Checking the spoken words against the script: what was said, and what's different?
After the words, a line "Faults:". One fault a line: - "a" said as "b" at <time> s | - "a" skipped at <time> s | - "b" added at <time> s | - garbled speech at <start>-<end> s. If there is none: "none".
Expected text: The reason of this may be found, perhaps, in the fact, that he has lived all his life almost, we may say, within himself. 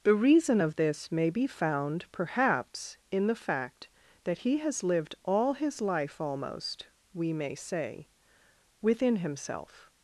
The reason of this may be found, perhaps, in the fact, that he has lived all his life almost, we may say, within himself.
Faults:
none